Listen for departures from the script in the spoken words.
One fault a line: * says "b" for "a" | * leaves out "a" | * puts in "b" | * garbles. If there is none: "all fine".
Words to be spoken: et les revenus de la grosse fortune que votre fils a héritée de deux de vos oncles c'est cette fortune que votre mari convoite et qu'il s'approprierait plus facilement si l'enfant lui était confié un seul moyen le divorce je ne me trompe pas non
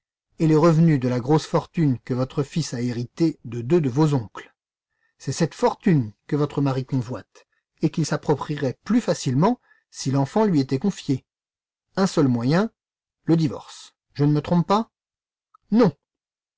all fine